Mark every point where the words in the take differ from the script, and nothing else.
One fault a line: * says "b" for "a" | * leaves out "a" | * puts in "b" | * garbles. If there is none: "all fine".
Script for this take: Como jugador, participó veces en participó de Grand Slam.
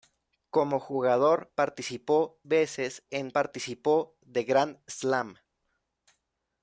all fine